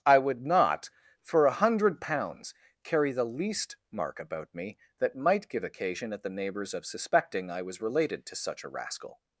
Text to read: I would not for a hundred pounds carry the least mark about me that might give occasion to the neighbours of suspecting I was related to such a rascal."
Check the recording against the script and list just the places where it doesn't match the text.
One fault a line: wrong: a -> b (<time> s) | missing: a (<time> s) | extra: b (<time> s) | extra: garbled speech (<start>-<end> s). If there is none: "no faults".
wrong: to -> at (6.1 s)